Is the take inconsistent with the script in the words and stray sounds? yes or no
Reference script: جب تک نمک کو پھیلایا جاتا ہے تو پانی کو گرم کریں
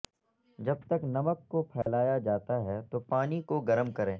yes